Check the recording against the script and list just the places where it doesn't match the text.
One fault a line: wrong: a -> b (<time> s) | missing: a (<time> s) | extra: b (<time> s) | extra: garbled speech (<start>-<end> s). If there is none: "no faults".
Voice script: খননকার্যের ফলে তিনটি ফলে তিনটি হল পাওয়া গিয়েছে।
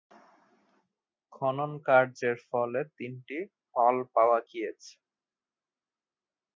missing: ফলে তিনটি (3.4 s)